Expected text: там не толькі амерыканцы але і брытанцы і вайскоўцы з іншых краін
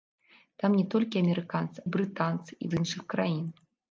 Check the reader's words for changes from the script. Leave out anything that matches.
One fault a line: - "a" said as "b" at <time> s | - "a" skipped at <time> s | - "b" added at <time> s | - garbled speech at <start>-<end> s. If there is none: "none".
- "але" skipped at 1.8 s
- "вайскоўцы" skipped at 2.7 s